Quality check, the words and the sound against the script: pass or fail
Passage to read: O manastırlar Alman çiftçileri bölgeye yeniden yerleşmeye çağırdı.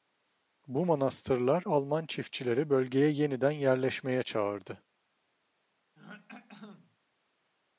fail